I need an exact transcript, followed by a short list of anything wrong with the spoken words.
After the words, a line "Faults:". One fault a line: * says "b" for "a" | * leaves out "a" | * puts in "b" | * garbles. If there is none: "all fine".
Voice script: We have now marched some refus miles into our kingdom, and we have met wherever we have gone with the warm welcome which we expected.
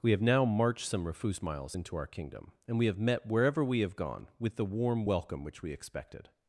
We have now marched some refus miles into our kingdom, and we have met wherever we have gone with the warm welcome which we expected.
Faults:
all fine